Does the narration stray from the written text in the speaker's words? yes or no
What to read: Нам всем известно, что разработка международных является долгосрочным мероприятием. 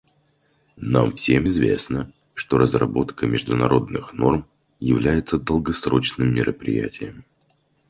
yes